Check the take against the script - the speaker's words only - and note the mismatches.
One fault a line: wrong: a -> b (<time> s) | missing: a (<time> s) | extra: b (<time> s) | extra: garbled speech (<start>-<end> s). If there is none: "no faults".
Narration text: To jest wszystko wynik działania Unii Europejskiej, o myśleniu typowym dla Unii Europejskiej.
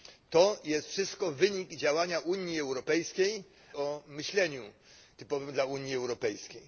no faults